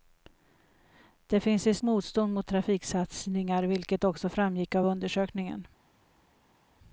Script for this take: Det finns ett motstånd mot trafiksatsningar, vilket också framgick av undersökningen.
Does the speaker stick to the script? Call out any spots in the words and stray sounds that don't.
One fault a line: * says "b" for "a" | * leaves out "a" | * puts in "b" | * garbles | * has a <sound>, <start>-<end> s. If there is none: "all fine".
all fine